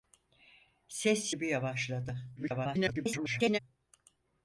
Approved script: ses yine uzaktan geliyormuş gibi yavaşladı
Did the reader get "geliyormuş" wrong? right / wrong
wrong